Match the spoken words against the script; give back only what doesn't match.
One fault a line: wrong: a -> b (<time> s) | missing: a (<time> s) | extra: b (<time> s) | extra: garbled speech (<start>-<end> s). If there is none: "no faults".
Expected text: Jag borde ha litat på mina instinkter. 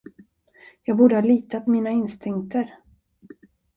missing: på (1.7 s)